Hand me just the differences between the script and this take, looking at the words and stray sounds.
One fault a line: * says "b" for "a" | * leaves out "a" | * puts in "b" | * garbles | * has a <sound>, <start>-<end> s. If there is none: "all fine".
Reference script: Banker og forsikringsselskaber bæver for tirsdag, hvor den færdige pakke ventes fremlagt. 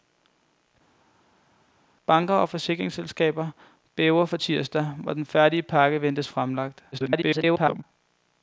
* garbles